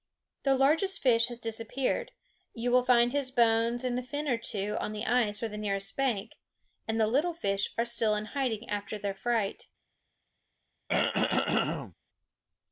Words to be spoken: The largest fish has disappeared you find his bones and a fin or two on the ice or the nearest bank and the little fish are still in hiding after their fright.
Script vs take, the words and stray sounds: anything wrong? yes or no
yes